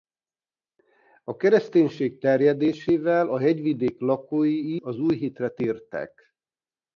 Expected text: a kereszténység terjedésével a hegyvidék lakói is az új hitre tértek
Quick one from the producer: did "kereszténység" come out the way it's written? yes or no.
yes